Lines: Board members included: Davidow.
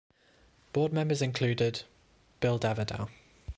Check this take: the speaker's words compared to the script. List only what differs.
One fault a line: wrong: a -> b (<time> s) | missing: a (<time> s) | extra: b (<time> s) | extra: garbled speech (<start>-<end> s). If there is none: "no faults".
extra: Bill (2.4 s)